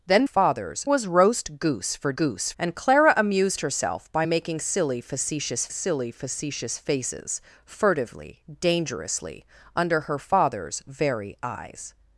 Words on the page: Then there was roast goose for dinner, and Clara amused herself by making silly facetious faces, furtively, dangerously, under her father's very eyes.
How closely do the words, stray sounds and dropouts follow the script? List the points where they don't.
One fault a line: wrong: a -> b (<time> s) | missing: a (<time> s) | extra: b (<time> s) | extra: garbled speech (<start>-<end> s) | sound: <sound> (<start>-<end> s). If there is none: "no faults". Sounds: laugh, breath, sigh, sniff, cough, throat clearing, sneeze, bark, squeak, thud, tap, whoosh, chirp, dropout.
wrong: there -> father's (0.2 s)
wrong: dinner -> goose (2.1 s)
extra: silly facetious (5.7 s)